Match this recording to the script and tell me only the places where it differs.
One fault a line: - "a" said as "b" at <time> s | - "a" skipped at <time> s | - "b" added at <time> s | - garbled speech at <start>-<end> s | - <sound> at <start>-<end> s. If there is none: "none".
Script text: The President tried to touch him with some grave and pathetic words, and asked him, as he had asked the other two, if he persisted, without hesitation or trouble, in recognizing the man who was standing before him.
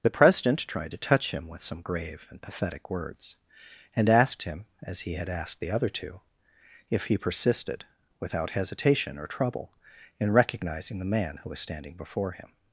none